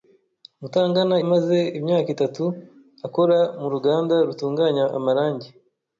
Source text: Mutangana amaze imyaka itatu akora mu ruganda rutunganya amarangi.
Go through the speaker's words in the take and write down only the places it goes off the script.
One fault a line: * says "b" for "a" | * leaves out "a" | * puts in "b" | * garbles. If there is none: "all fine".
all fine